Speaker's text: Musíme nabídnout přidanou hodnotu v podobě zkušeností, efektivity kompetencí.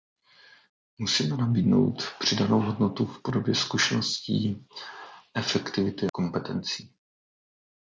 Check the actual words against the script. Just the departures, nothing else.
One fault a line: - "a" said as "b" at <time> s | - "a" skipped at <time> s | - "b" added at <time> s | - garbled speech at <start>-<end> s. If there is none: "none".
none